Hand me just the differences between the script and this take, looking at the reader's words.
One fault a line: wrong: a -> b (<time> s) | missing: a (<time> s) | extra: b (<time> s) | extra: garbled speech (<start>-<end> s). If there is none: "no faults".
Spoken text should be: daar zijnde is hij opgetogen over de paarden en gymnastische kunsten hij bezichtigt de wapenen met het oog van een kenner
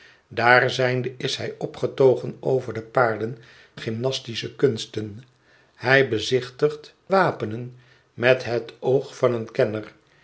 missing: en (3.4 s)
missing: de (6.9 s)